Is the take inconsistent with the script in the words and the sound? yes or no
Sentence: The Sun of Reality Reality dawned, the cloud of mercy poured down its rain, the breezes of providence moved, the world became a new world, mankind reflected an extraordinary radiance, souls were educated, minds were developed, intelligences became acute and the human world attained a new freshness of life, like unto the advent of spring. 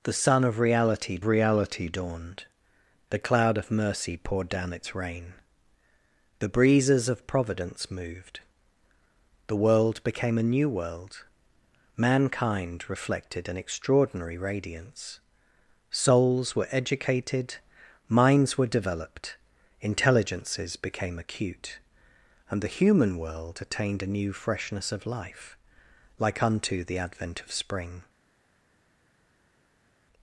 no